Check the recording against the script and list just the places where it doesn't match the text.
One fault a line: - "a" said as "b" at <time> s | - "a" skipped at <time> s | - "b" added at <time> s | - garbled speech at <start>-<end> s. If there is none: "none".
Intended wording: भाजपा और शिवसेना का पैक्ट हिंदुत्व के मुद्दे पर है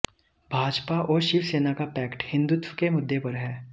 none